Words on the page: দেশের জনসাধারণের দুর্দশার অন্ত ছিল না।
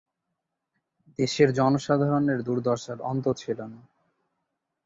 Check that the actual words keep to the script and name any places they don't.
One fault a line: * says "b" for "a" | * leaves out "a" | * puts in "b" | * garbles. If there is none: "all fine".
all fine